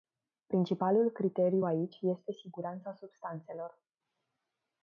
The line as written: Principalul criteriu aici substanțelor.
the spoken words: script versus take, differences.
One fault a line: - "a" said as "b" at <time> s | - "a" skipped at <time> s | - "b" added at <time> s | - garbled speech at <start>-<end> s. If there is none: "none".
- "este siguranța" added at 2.0 s